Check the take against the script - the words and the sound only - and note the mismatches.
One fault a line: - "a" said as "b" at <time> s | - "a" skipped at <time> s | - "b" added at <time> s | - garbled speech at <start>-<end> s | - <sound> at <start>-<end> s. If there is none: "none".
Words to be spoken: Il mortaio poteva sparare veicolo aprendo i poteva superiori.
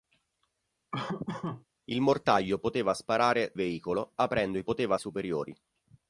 - laugh at 0.9-1.7 s